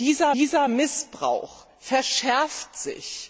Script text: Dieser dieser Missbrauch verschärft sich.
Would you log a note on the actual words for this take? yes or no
no